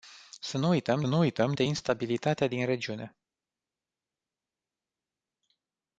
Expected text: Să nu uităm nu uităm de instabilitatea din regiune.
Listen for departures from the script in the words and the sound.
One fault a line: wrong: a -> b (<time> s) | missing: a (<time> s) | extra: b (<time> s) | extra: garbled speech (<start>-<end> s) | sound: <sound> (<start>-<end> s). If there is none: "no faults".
no faults